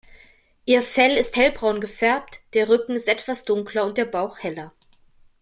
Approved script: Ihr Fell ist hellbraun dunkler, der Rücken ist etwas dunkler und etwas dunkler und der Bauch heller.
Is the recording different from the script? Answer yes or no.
yes